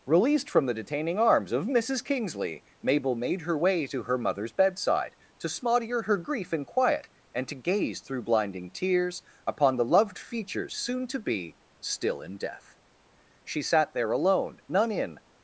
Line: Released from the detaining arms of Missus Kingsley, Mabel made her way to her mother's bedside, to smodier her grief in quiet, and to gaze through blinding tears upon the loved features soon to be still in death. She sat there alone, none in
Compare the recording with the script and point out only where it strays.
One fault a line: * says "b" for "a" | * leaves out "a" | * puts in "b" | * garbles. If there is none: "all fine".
all fine